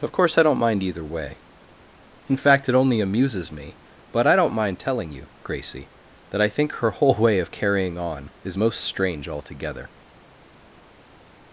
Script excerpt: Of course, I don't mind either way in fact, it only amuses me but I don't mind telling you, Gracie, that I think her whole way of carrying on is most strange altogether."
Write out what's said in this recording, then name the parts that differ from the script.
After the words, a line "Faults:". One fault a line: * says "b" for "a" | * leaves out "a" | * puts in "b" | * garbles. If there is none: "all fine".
Of course, I don't mind either way in fact, it only amuses me but I don't mind telling you, Gracie, that I think her whole way of carrying on is most strange altogether."
Faults:
all fine